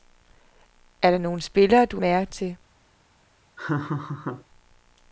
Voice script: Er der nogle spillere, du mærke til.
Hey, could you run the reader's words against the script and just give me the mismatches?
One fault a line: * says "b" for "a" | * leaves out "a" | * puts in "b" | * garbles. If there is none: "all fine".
all fine